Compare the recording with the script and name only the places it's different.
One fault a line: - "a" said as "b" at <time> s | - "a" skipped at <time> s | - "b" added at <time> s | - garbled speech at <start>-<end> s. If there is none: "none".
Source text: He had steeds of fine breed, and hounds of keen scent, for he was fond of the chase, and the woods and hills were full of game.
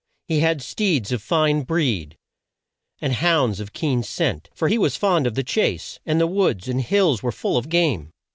none